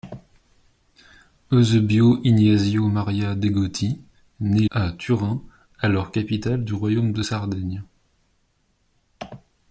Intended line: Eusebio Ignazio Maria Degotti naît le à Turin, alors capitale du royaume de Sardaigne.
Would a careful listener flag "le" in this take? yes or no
yes